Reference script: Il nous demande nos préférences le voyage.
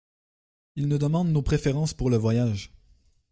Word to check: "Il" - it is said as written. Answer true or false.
true